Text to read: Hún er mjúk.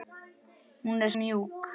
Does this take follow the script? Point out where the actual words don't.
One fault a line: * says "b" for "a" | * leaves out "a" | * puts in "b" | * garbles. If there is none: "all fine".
all fine